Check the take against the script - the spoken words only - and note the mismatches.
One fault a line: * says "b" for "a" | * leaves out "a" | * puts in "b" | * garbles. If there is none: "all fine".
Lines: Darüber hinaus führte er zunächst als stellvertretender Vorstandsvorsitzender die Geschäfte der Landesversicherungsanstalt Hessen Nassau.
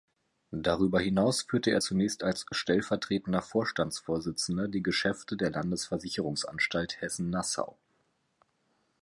all fine